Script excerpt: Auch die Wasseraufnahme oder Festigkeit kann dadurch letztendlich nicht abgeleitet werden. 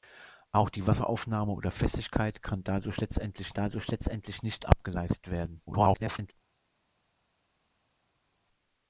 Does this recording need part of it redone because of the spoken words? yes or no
yes